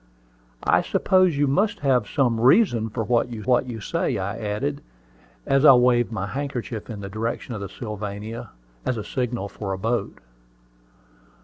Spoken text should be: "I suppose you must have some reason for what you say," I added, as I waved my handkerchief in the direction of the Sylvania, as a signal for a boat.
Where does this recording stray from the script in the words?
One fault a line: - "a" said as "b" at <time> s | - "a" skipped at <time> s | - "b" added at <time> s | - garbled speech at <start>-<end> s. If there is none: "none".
- "what you" added at 3.4 s